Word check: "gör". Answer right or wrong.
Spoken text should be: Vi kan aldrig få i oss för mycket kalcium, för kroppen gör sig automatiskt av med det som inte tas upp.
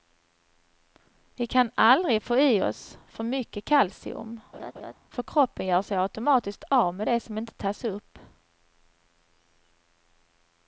right